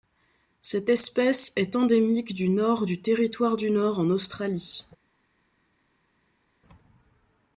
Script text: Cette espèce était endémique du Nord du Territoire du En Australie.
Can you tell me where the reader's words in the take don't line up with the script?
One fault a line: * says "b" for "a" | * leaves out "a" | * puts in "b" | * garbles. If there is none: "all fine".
* says "est" for "était"
* puts in "Nord"